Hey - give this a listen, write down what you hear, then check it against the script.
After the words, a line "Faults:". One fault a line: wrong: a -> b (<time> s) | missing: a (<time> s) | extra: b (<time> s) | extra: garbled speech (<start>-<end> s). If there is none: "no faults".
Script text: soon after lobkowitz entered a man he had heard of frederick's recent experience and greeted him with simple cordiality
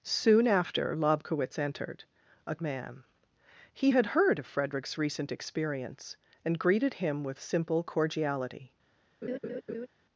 soon after lobkowitz entered a man he had heard of frederick's recent experience and greeted him with simple cordiality
Faults:
no faults